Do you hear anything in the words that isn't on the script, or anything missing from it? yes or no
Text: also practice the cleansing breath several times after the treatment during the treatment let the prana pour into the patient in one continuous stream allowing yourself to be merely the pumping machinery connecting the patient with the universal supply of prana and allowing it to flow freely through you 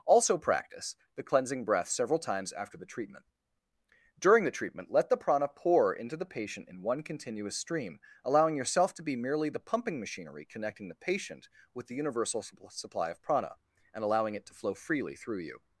no